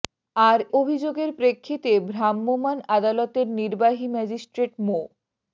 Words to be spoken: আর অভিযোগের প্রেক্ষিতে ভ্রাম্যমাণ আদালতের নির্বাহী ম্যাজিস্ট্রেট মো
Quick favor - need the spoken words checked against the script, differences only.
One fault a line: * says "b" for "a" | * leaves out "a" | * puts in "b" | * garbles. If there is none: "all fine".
all fine